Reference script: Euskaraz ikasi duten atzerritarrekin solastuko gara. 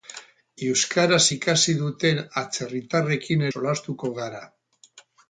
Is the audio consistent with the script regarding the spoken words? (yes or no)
yes